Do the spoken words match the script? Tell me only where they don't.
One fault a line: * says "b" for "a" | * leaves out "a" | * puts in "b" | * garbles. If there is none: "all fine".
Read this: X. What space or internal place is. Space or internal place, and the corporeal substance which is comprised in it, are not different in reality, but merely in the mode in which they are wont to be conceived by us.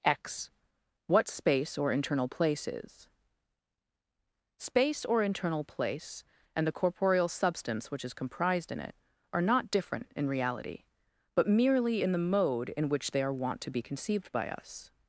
all fine